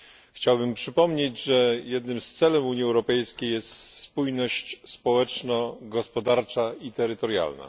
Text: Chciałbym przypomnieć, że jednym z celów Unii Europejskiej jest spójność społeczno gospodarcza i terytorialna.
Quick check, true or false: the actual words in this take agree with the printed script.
true